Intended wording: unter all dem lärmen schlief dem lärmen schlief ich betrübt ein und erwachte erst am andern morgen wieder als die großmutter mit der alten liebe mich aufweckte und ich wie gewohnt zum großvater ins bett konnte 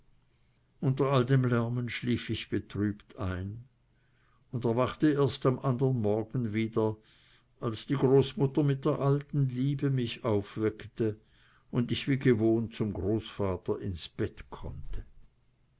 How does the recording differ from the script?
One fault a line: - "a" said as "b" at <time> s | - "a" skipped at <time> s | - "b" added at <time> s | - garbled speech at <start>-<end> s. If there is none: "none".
- "dem lärmen schlief" skipped at 2.3 s